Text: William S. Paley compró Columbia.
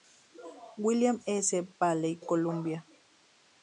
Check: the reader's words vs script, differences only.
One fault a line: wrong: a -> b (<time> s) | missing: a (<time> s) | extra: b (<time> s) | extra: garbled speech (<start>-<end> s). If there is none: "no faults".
missing: compró (2.1 s)